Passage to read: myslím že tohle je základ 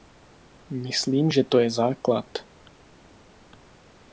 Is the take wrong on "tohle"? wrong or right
wrong